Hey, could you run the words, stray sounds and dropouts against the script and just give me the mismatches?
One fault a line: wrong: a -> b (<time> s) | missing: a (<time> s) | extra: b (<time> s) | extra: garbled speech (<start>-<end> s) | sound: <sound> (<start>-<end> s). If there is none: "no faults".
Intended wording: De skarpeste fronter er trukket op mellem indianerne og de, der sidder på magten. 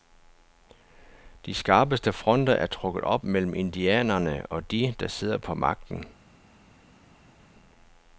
no faults